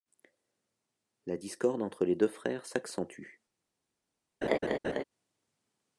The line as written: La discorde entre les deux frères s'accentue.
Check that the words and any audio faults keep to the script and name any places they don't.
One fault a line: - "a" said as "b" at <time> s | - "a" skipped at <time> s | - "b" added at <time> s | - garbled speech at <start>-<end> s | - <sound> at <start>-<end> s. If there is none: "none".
- laugh at 4.4-5.0 s